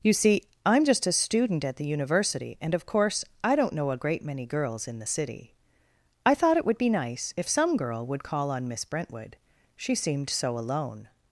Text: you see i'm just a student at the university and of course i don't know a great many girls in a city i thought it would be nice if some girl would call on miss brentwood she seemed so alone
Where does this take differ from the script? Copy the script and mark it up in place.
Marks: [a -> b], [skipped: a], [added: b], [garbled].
you see i'm just a student at the university and of course i don't know a great many girls in [a -> the] city i thought it would be nice if some girl would call on miss brentwood she seemed so alone